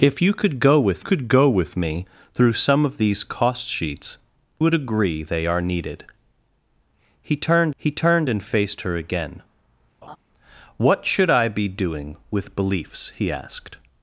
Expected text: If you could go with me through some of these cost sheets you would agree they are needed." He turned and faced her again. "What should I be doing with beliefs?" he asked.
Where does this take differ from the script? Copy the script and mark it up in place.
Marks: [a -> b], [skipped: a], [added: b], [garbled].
If you could go with [added: could go with] me through some of these cost sheets [skipped: you] would agree they are needed." He turned [added: he turned] and faced her again. "What should I be doing with beliefs?" he asked.